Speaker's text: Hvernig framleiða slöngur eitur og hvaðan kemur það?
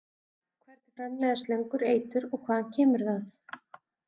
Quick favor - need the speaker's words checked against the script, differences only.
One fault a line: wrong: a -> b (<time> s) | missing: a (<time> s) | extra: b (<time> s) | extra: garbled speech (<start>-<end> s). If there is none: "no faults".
no faults